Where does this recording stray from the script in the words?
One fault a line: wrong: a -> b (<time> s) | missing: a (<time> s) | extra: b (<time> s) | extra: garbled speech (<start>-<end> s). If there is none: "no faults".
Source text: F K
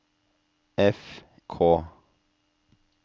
no faults